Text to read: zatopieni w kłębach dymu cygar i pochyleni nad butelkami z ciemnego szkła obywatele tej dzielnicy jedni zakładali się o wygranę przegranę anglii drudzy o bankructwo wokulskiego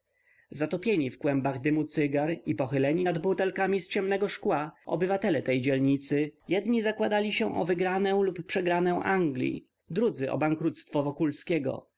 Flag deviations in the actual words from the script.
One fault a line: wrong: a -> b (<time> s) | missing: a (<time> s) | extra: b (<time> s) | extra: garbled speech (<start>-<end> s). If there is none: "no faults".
extra: lub (8.2 s)